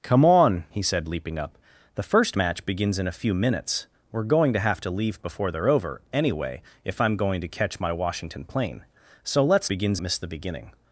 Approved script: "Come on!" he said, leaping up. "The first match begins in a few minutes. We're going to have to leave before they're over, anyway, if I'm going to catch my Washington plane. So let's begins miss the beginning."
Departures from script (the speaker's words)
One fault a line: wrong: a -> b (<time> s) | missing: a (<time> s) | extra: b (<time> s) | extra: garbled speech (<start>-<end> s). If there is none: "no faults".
no faults